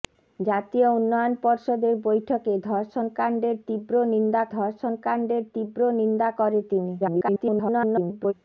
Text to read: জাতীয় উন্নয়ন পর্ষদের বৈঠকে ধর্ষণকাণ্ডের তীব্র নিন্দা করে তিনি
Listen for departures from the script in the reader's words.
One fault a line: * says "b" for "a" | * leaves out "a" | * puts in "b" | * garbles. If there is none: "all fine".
* puts in "ধর্ষণকাণ্ডের তীব্র নিন্দা"
* garbles